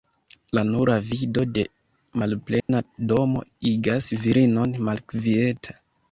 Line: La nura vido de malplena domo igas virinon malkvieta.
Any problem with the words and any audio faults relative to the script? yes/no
yes